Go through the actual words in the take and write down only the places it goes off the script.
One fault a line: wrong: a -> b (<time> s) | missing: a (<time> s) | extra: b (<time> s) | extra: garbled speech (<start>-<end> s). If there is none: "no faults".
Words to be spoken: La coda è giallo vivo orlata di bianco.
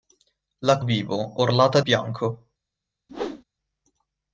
missing: coda è giallo (0.8 s)
missing: di (1.8 s)